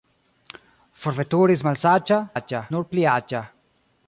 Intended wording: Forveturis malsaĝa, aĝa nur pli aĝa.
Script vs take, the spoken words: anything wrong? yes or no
no